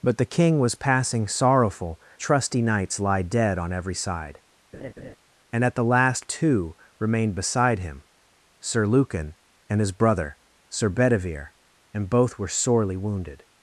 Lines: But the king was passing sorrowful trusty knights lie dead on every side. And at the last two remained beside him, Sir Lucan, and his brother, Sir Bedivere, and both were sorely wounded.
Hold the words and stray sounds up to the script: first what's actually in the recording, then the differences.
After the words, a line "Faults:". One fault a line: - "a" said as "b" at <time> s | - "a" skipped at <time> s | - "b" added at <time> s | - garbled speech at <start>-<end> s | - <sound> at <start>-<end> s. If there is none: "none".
But the king was passing sorrowful trusty knights lie dead on every side. And at the last two remained beside him, Sir Lucan, and his brother, Sir Bedivere, and both were sorely wounded.
Faults:
- laugh at 4.7-5.2 s